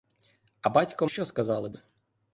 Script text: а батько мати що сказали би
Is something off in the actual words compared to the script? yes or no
yes